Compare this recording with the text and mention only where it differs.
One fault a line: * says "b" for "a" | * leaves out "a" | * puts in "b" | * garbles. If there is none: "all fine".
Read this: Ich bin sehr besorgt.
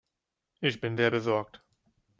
all fine